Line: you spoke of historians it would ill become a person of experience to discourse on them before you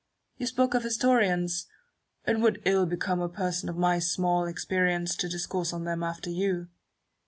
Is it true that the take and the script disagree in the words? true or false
true